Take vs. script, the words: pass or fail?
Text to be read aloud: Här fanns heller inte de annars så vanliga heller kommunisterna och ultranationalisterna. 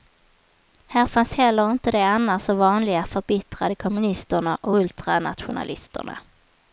fail